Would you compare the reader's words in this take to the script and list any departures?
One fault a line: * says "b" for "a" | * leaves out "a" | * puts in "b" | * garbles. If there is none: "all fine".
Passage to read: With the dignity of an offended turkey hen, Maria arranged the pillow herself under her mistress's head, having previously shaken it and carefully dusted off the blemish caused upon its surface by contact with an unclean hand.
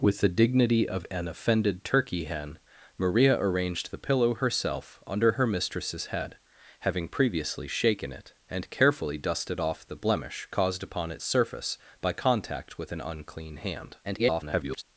* garbles